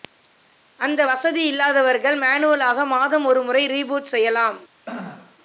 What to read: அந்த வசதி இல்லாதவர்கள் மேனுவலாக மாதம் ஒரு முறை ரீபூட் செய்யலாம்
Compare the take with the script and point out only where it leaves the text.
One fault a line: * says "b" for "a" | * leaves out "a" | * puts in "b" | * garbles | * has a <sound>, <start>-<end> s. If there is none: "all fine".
* has a throat clearing, 4.9-5.4 s